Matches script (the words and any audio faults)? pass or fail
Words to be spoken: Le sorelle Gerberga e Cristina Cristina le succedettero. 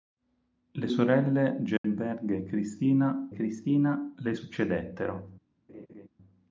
fail